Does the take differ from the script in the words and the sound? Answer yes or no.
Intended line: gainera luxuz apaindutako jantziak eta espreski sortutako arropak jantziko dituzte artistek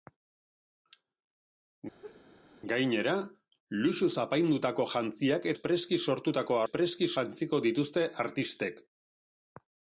yes